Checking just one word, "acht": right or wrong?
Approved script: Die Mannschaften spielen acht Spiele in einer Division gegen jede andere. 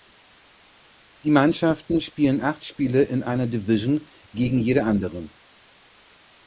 right